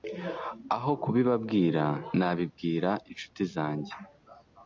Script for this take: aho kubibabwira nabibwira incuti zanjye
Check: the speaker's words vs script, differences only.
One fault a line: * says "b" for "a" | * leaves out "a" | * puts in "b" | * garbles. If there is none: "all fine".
all fine